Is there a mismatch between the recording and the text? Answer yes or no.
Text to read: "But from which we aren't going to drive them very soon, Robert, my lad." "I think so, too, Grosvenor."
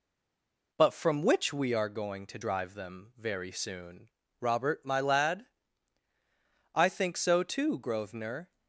yes